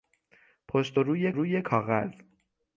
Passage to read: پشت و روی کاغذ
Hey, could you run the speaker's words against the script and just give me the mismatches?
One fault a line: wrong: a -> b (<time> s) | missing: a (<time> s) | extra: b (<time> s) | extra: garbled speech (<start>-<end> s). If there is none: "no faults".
extra: روی (1.3 s)